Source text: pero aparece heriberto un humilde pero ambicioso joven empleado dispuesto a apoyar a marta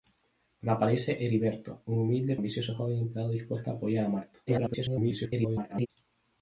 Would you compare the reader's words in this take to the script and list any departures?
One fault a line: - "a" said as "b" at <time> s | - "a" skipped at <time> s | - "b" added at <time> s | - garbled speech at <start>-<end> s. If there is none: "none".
- "pero" skipped at 2.4 s
- garbled speech at 4.5-5.9 s